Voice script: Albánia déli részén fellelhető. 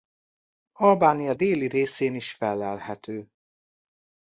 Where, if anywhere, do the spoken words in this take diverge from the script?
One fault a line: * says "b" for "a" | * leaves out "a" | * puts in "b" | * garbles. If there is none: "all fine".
* puts in "is"